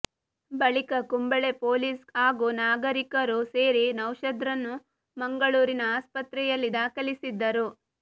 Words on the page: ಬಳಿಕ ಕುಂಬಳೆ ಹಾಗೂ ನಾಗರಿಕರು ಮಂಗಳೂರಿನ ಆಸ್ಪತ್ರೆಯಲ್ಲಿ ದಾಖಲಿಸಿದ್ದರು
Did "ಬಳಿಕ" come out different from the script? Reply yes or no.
no